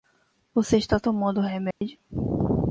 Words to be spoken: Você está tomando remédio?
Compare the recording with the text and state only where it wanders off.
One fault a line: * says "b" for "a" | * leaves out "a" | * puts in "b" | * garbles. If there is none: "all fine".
all fine